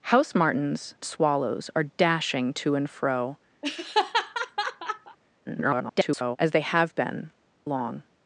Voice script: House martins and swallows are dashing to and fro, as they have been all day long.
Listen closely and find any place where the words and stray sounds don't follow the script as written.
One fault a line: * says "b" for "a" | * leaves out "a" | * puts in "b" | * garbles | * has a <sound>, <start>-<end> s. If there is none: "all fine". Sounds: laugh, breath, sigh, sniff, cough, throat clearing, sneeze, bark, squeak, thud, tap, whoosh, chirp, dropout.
* leaves out "and"
* has a laugh, 3.6-5.2 s
* garbles
* leaves out "all day"